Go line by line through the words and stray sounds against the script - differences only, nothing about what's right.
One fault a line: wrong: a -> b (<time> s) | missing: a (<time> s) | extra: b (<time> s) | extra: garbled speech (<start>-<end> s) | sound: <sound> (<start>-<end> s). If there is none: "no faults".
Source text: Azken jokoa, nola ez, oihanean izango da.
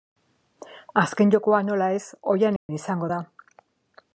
sound: dropout (2.6-2.7 s)